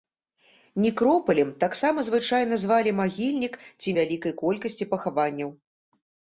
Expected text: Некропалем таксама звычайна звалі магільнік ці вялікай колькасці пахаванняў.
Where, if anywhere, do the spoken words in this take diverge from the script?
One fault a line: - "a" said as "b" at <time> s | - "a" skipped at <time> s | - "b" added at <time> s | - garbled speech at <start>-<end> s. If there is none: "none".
none